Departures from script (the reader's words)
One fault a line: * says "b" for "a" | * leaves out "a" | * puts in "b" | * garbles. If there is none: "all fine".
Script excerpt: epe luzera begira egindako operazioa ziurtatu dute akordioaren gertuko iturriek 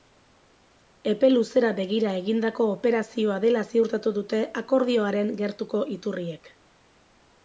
* puts in "dela"